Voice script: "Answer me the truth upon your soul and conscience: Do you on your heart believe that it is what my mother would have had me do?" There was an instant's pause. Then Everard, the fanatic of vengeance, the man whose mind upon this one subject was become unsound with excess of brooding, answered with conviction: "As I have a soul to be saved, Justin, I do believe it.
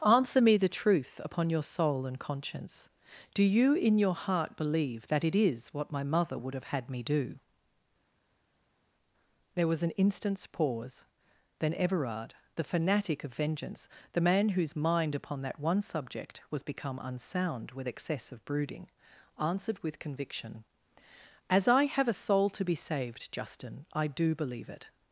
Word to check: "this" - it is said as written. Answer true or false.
false